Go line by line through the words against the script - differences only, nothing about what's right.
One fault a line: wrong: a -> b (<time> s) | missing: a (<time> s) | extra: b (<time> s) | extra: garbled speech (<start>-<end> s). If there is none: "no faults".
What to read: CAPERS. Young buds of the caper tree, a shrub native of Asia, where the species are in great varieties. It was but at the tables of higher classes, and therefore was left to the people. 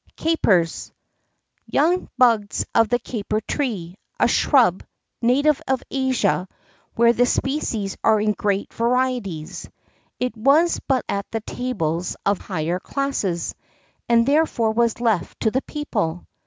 no faults